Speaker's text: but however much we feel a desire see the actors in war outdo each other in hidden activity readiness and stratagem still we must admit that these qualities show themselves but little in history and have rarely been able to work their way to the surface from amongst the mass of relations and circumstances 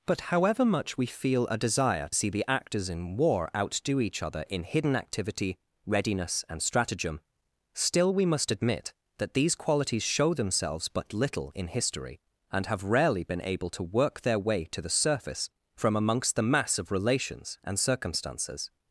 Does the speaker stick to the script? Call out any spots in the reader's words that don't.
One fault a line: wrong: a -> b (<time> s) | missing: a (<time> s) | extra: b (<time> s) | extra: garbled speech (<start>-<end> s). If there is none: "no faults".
no faults